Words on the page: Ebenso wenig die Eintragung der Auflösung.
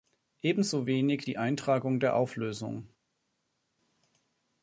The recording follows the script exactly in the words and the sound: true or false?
true